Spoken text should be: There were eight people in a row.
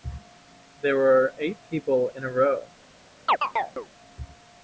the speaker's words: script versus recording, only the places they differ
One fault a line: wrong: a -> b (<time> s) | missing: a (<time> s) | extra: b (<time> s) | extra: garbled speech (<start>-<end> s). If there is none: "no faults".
no faults